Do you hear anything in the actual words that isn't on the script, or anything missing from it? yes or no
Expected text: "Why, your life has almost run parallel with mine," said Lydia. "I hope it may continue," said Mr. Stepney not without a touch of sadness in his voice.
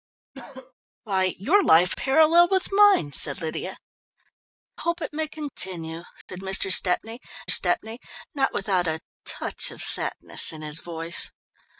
yes